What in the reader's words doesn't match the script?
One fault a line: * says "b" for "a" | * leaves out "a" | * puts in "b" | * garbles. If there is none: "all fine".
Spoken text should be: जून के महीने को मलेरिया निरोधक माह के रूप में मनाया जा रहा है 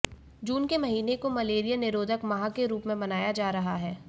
all fine